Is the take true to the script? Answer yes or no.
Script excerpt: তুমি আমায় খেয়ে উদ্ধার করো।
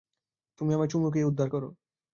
no